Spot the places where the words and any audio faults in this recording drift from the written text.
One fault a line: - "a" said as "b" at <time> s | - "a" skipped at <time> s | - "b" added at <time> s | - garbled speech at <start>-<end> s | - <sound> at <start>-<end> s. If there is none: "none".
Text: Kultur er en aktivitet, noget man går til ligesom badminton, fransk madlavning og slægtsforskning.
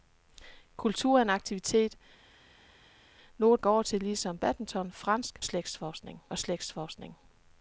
- "man" skipped at 3.6 s
- "madlavning" said as "slægtsforskning" at 5.4 s